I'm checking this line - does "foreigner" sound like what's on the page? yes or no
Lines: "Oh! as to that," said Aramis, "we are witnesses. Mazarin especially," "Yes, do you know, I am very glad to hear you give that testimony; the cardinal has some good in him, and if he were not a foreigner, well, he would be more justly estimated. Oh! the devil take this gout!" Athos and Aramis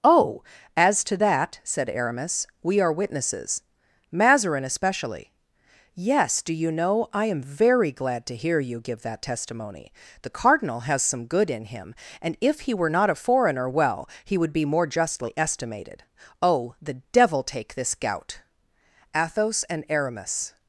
yes